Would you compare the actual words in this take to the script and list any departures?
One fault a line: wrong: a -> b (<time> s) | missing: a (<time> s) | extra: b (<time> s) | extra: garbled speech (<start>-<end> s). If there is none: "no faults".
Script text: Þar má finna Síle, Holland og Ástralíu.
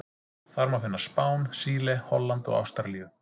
extra: Spán (1.0 s)